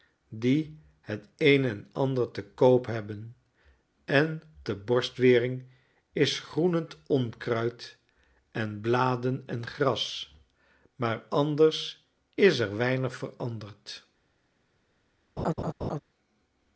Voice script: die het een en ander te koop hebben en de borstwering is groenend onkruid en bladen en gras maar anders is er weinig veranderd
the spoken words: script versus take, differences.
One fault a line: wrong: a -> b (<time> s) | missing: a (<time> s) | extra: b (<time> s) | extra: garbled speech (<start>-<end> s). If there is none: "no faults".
no faults